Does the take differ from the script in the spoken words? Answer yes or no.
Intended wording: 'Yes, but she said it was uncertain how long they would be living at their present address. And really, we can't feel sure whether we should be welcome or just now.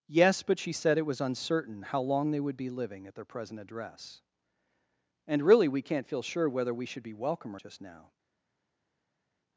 no